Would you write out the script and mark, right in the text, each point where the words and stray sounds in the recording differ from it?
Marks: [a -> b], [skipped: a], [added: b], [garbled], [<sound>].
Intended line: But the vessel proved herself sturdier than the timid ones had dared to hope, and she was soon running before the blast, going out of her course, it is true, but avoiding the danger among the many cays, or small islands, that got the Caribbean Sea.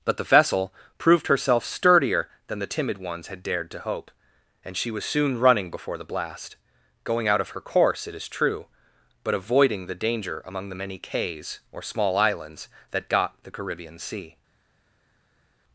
But the vessel proved herself sturdier than the timid ones had dared to hope, and she was soon running before the blast, going out of her course, it is true, but avoiding the danger among the many cays, or small islands, that got the Caribbean Sea.